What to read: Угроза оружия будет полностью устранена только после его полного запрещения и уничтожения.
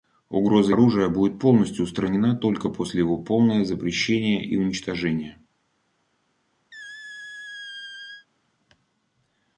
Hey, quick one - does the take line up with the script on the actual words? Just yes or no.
yes